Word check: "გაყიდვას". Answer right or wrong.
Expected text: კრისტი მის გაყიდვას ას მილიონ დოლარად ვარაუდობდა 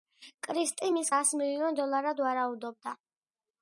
wrong